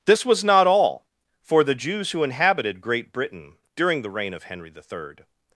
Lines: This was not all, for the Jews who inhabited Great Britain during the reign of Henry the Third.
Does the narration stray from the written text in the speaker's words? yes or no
no